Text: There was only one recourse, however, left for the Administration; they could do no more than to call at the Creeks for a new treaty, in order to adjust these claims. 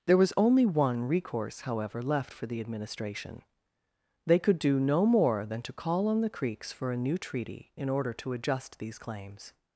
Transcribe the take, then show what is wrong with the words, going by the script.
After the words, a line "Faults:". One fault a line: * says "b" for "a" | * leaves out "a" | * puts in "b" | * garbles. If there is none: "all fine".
There was only one recourse, however, left for the Administration; they could do no more than to call on the Creeks for a new treaty, in order to adjust these claims.
Faults:
* says "on" for "at"